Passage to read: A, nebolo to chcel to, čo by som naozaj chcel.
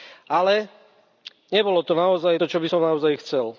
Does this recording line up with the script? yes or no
no